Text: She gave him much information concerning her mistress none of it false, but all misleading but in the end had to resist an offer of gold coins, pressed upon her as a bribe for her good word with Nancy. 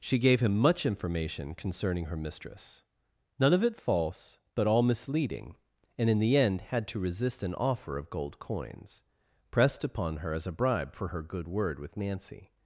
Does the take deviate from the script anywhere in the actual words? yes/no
yes